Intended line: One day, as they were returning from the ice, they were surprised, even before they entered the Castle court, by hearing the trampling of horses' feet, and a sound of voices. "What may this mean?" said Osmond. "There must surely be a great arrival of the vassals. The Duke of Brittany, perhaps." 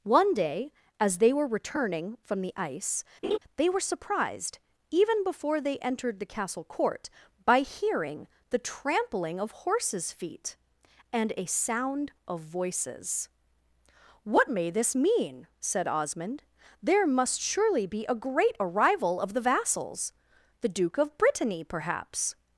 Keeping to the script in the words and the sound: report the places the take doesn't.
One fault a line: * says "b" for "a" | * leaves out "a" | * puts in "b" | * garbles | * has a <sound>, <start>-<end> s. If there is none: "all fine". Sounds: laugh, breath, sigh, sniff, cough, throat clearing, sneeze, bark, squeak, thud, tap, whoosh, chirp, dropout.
* has a laugh, 3.2-3.4 s